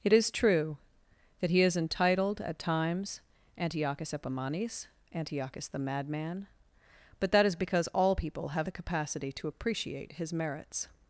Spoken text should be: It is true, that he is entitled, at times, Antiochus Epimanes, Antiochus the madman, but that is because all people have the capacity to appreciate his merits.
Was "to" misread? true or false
false